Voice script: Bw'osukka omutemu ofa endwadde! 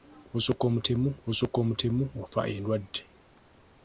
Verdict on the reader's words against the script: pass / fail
fail